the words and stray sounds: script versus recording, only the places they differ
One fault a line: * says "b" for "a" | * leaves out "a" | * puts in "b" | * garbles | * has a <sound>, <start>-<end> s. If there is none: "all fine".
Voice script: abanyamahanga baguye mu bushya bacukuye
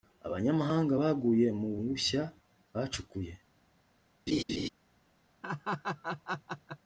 * has a laugh, 4.3-4.7 s
* has a laugh, 5.4-6.8 s